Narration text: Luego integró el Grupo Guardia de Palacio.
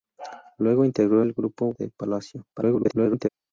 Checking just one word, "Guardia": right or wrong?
wrong